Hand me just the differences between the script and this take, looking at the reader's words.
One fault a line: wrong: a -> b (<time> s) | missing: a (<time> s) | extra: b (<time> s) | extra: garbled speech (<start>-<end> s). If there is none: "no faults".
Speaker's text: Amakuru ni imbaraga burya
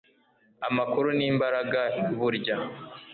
no faults